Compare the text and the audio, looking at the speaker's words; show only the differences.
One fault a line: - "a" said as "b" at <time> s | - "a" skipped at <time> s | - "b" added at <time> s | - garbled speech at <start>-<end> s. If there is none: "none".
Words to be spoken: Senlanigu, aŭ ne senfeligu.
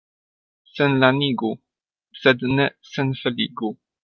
- "aŭ" said as "sed" at 2.2 s